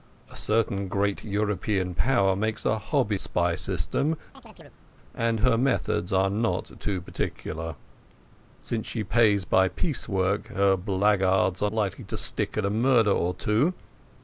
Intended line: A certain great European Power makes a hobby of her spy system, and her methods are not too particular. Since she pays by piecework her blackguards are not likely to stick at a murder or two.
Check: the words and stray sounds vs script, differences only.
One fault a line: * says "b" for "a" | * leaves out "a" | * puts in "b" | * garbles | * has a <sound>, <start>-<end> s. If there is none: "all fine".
* leaves out "of her"
* has a chirp, 4.3-4.8 s
* leaves out "not"